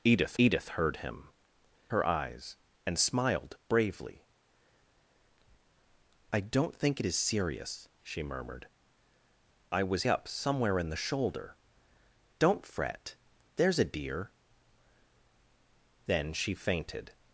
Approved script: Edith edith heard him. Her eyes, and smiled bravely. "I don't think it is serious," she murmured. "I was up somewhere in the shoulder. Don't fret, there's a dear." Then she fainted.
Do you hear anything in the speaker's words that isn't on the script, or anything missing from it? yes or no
no